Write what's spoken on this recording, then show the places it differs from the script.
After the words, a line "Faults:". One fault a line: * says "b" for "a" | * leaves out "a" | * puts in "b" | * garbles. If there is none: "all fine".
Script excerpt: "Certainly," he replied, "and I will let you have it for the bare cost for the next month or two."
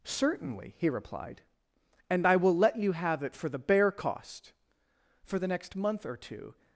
"Certainly," he replied, "and I will let you have it for the bare cost for the next month or two."
Faults:
all fine